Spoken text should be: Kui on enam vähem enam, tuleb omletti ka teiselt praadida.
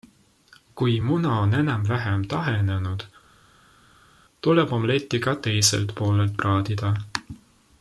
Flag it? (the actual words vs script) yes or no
yes